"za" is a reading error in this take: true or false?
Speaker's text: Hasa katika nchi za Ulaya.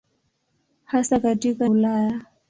true